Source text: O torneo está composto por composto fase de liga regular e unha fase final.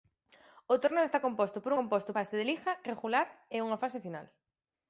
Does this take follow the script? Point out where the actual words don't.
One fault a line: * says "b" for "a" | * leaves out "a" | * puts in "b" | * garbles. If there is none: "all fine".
all fine